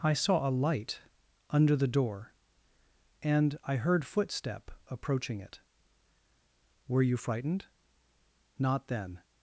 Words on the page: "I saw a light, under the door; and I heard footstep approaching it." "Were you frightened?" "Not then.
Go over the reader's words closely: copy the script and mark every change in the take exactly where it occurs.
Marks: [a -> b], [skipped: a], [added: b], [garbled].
"I saw a light, under the door; and I heard footstep approaching it." "Were you frightened?" "Not then.